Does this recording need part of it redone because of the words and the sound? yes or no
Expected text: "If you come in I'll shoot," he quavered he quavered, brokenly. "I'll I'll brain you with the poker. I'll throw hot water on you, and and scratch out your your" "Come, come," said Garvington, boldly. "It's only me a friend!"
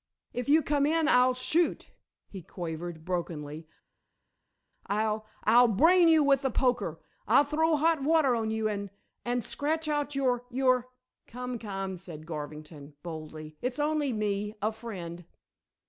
yes